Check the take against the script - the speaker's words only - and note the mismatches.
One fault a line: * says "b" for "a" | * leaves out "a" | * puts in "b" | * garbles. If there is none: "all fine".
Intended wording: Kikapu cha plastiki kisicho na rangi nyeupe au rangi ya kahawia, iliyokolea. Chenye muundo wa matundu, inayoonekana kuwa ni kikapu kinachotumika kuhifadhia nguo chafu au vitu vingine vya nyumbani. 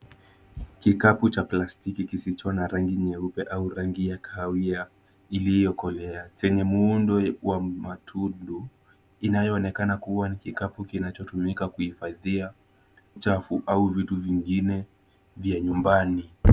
* leaves out "nguo"